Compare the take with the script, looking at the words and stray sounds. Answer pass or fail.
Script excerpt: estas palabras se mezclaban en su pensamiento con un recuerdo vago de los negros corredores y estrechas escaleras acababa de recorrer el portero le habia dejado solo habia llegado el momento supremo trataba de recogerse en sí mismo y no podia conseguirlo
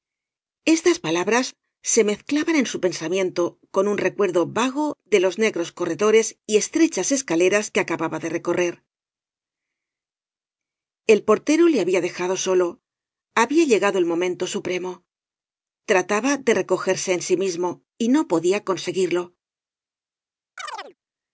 fail